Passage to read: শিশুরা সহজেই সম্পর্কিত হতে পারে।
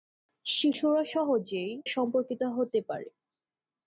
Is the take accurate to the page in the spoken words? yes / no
yes